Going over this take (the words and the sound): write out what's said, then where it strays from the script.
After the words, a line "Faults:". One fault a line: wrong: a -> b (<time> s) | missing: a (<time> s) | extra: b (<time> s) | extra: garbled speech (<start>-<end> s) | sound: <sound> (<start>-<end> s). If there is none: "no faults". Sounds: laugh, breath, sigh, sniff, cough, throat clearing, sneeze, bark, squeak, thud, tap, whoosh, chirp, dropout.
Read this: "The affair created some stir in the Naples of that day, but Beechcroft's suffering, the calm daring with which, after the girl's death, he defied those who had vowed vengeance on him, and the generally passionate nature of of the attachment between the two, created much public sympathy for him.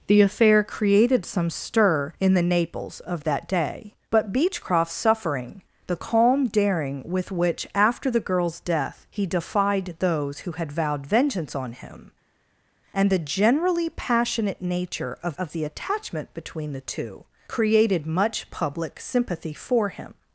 "The affair created some stir in the Naples of that day, but Beechcroft's suffering, the calm daring with which, after the girl's death, he defied those who had vowed vengeance on him, and the generally passionate nature of of the attachment between the two, created much public sympathy for him.
Faults:
no faults